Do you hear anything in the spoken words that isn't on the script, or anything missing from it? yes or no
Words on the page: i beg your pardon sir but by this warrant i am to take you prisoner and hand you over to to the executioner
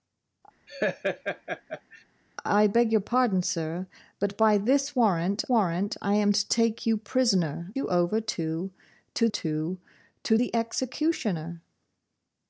yes